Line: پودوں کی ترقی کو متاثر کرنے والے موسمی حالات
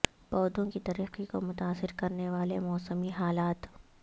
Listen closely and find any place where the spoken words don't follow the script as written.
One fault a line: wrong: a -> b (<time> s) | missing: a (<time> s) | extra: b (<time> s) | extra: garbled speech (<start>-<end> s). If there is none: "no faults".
no faults